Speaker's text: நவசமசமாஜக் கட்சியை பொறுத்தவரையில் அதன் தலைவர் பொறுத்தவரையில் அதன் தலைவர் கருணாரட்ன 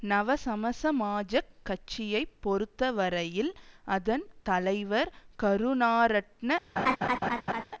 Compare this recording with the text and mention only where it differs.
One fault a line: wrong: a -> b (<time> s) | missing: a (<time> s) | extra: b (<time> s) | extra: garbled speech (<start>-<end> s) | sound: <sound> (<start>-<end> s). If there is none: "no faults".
missing: பொறுத்தவரையில் அதன் தலைவர் (5.1 s)
sound: laugh (6.8-7.6 s)